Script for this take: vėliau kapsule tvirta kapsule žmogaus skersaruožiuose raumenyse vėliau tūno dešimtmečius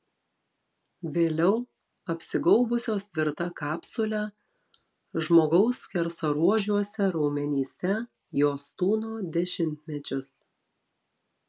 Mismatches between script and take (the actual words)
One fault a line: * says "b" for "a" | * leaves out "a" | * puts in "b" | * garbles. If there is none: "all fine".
* says "apsigaubusios" for "kapsule"
* says "jos" for "vėliau"